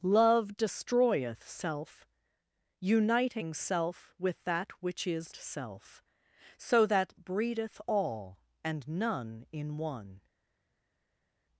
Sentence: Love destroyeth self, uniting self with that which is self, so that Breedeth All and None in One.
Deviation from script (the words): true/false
false